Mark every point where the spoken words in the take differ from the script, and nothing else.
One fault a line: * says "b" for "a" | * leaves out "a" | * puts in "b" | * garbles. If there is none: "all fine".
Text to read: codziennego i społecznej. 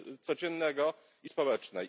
all fine